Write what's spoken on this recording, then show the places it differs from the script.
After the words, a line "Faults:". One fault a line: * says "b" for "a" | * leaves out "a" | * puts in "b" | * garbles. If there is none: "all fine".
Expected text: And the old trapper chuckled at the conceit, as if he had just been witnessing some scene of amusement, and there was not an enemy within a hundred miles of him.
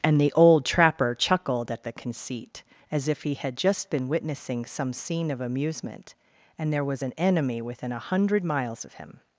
And the old trapper chuckled at the conceit, as if he had just been witnessing some scene of amusement, and there was an enemy within a hundred miles of him.
Faults:
* leaves out "not"